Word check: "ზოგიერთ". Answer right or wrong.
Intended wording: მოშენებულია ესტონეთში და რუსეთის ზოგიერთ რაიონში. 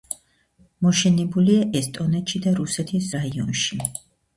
wrong